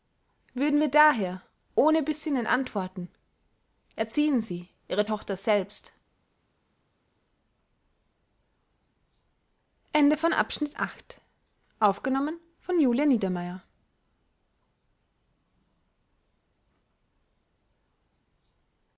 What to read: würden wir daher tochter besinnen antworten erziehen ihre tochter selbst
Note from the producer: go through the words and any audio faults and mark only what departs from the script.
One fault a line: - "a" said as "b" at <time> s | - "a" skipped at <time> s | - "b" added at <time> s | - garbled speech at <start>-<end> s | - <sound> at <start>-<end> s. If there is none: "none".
- "tochter" said as "ohne" at 1.7 s
- "sie" added at 4.4 s